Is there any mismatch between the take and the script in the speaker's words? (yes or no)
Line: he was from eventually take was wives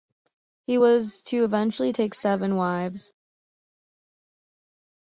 yes